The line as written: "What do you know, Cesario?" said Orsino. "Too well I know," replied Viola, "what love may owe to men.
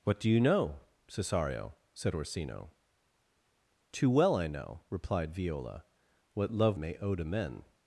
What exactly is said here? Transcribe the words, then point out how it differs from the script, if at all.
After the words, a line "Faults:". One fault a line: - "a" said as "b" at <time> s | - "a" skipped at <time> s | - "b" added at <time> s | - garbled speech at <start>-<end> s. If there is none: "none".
"What do you know, Cesario?" said Orsino. "Too well I know," replied Viola, "what love may owe to men.
Faults:
none